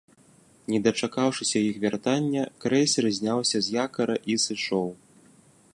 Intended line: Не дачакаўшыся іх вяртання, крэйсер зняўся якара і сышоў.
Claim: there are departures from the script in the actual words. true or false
true